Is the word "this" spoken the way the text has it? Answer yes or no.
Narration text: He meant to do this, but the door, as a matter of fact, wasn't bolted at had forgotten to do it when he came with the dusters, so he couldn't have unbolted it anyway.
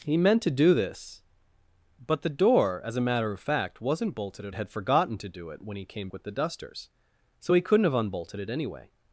yes